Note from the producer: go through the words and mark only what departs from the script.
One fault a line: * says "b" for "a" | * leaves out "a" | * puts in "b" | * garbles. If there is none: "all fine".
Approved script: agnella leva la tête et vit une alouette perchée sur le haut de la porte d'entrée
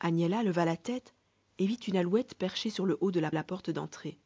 * puts in "la"